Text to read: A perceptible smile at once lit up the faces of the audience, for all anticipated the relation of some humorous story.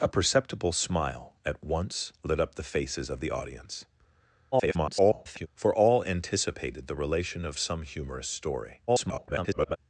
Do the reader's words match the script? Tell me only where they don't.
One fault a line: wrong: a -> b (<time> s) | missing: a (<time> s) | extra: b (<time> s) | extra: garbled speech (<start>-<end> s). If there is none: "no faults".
extra: garbled speech (4.5-5.5 s)
extra: garbled speech (8.9-9.8 s)